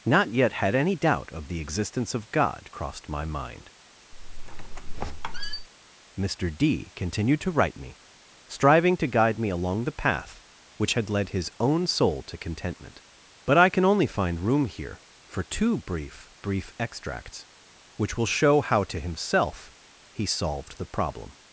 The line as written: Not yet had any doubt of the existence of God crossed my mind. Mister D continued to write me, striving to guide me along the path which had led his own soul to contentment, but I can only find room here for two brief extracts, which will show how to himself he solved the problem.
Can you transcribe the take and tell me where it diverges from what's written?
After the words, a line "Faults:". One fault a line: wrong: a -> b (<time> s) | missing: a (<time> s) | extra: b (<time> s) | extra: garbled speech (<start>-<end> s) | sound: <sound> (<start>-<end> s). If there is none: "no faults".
Not yet had any doubt of the existence of God crossed my mind. Mister D continued to write me, striving to guide me along the path which had led his own soul to contentment, but I can only find room here for two brief brief extracts, which will show how to himself he solved the problem.
Faults:
sound: squeak (4.1-5.7 s)
extra: brief (16.4 s)